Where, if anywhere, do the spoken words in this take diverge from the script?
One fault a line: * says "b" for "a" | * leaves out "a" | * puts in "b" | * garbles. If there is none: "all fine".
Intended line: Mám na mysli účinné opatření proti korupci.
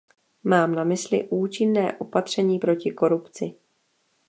all fine